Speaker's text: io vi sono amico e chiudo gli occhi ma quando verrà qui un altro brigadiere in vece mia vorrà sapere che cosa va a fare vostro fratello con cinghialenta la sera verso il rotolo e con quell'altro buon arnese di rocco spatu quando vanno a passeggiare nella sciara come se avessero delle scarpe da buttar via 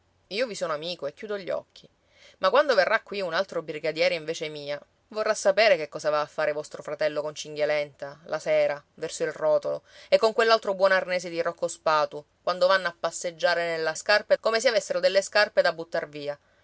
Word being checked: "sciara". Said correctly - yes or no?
no